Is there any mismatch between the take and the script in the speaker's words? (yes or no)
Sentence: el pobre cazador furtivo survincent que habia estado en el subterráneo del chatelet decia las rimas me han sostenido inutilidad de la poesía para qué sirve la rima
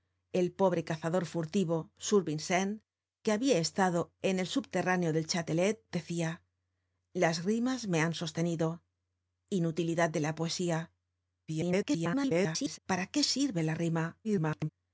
yes